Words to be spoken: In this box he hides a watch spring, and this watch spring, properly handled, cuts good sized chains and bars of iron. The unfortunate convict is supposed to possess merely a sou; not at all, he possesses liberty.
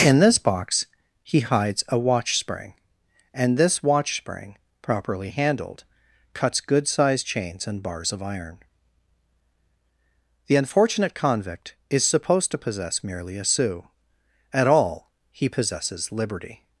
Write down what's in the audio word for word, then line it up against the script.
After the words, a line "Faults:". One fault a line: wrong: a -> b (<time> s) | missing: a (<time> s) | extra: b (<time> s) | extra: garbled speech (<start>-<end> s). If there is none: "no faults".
In this box he hides a watch spring, and this watch spring, properly handled, cuts good sized chains and bars of iron. The unfortunate convict is supposed to possess merely a sou; at all, he possesses liberty.
Faults:
missing: not (13.9 s)